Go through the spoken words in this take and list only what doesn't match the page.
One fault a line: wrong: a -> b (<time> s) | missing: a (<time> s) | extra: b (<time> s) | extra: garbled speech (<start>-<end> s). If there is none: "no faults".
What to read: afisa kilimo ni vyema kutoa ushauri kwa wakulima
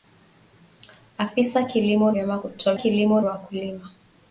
missing: ni (2.1 s)
wrong: ushauri -> kilimo (2.7 s)